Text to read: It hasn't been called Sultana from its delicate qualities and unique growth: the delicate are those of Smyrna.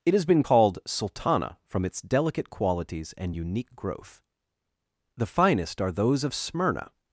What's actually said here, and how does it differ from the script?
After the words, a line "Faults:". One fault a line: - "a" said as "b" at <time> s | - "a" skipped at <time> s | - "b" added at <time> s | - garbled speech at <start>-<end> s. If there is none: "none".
It has been called Sultana from its delicate qualities and unique growth: the finest are those of Smyrna.
Faults:
- "hasn't" said as "has" at 0.1 s
- "delicate" said as "finest" at 5.3 s